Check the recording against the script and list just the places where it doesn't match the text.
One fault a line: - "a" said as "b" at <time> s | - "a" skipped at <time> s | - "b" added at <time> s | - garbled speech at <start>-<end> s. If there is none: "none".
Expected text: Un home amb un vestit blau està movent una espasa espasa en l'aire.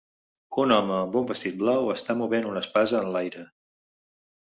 - "espasa" skipped at 3.1 s